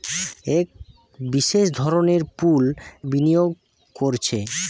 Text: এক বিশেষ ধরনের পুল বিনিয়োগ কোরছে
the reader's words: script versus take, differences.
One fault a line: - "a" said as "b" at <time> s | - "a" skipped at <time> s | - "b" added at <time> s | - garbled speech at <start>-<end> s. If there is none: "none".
none